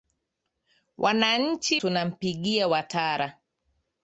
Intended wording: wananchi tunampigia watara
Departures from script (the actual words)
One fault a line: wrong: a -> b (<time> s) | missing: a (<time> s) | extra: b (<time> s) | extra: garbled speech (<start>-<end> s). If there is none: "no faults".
no faults